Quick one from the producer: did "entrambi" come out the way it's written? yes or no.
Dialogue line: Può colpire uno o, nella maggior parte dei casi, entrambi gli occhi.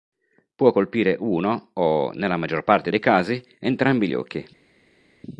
yes